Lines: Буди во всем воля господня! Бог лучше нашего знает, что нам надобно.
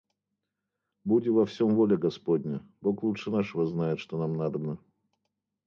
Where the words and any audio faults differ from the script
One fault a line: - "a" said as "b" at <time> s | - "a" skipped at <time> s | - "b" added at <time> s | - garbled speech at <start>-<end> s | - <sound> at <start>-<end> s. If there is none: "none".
none